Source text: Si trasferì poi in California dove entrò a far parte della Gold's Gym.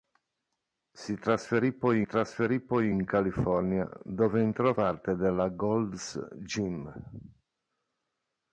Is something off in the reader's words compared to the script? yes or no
yes